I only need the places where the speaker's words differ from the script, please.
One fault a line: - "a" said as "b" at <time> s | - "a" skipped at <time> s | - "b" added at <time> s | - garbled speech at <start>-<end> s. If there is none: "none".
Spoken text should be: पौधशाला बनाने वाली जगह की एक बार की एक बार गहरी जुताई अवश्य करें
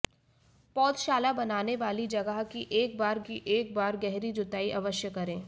none